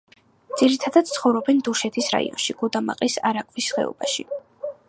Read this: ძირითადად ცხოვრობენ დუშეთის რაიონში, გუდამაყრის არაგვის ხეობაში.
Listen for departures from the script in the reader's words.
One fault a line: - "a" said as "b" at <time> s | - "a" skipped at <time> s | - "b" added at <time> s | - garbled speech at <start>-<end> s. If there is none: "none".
none